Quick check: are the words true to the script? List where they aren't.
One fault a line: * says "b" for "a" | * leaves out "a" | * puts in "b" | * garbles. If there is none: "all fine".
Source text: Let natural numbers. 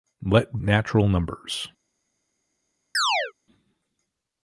all fine